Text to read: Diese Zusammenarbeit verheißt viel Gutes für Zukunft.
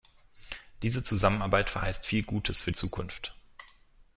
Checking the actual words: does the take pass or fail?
pass